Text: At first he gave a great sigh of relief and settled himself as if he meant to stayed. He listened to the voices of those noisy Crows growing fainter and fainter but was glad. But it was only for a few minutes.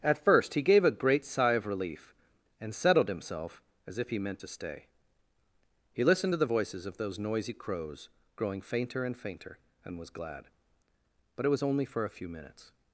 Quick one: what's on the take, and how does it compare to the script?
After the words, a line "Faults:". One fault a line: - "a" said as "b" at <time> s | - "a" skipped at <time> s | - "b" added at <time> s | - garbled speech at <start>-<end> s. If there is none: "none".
At first he gave a great sigh of relief and settled himself as if he meant to stay. He listened to the voices of those noisy Crows growing fainter and fainter and was glad. But it was only for a few minutes.
Faults:
- "stayed" said as "stay" at 4.5 s
- "but" said as "and" at 9.8 s